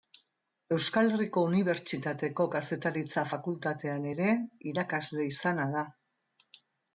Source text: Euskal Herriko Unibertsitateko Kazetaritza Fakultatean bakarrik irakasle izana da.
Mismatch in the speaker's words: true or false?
true